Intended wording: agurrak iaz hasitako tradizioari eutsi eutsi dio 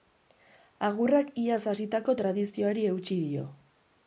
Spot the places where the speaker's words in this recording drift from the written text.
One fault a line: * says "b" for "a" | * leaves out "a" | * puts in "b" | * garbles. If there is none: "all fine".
* leaves out "eutsi"